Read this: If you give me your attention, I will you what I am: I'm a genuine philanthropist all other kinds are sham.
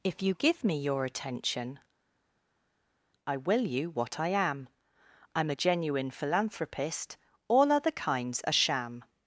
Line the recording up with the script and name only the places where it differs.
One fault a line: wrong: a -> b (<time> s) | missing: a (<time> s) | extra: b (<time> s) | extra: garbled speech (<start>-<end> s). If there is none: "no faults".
no faults